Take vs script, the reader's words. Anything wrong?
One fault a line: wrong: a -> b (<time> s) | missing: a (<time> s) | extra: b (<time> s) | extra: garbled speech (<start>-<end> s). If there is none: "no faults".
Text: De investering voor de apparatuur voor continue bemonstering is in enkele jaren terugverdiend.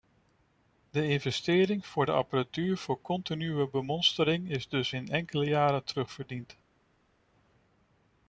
extra: dus (4.7 s)